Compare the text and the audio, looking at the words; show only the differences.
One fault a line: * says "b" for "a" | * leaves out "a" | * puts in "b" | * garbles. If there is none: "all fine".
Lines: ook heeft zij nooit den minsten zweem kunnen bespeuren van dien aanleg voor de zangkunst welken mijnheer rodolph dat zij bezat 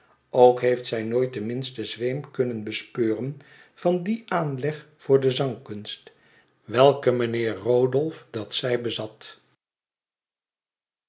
all fine